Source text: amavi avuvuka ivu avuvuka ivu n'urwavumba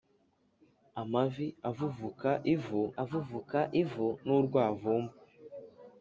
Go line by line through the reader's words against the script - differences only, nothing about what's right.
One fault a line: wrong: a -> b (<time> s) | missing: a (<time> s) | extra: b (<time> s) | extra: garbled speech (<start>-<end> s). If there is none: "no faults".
no faults